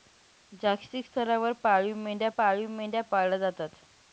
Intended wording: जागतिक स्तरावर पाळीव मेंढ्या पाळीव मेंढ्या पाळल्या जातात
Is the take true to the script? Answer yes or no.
yes